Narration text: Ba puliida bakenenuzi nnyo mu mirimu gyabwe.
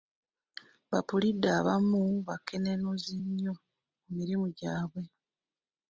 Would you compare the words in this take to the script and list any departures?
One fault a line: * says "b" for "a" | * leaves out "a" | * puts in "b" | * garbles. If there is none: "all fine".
* puts in "abamu"